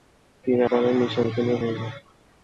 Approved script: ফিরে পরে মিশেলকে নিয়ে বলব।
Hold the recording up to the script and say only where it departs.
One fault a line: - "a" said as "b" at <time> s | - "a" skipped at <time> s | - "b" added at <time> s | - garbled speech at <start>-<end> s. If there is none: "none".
none